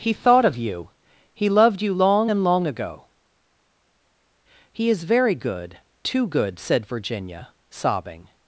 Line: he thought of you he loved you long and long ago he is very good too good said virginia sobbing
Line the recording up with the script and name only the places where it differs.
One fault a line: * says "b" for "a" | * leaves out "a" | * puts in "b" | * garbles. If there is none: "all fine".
all fine